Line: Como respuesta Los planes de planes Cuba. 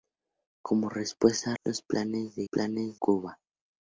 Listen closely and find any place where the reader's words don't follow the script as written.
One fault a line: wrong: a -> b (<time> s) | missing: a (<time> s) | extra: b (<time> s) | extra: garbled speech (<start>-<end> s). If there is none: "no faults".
no faults